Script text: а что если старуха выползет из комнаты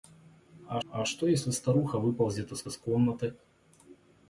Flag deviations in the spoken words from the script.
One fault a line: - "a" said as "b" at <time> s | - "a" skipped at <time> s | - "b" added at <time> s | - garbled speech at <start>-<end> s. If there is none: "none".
- "а" added at 0.9 s
- "из" added at 2.7 s